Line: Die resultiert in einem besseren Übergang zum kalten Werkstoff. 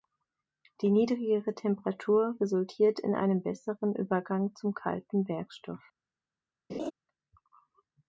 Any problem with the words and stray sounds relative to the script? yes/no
yes